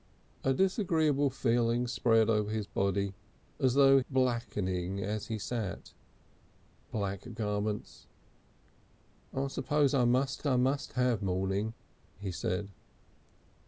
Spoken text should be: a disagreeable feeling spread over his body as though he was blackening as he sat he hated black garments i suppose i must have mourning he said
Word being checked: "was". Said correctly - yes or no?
no